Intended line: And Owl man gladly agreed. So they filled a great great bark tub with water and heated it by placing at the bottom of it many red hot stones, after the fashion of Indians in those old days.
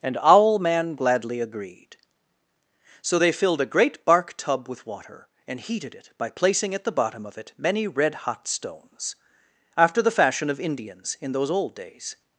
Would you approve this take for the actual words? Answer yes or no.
no